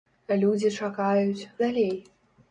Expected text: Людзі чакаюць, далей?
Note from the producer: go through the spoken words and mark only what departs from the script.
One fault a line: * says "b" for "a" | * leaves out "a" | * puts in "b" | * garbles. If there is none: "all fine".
all fine